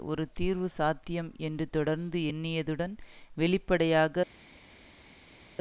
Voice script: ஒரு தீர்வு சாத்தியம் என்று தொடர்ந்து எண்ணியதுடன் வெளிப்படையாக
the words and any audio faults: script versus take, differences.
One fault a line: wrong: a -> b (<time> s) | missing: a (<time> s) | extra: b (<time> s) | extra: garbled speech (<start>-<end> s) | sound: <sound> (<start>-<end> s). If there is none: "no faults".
no faults